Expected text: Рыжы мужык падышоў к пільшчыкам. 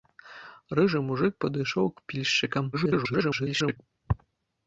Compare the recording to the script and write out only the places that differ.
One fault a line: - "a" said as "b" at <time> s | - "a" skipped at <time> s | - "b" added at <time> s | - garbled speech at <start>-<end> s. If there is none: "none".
- garbled speech at 2.7-3.8 s